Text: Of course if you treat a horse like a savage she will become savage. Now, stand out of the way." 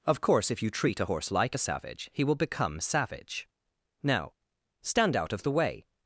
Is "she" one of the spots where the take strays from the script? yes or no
yes